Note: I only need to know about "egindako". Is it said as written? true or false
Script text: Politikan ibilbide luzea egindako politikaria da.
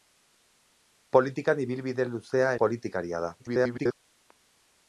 false